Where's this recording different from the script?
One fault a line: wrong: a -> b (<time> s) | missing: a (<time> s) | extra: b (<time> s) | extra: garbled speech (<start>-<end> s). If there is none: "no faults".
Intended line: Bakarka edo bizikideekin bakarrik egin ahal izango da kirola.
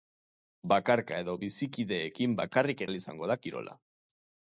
missing: egin (2.8 s)